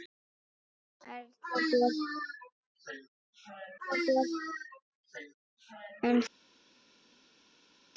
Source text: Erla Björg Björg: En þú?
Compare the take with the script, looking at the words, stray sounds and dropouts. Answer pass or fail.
pass